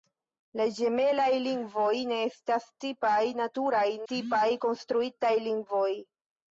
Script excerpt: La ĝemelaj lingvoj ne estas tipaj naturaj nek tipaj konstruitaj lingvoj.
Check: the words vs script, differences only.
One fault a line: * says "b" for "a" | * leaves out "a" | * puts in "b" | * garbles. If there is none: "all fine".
* leaves out "nek"